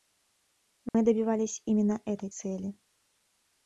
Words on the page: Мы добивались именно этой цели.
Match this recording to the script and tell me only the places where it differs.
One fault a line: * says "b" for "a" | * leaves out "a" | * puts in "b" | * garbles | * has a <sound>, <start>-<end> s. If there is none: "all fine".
* has a dropout, 0.9-0.9 s